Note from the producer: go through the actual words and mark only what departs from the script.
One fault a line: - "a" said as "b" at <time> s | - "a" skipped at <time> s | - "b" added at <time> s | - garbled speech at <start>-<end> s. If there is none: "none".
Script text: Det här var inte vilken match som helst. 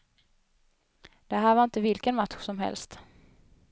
none